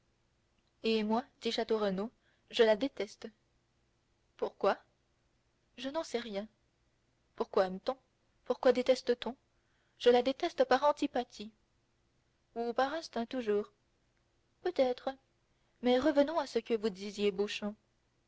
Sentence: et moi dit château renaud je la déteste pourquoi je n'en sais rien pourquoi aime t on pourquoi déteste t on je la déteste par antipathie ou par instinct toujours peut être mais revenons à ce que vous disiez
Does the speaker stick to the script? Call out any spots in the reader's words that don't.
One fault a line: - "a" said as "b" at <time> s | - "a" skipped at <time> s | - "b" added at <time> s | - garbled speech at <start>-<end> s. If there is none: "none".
none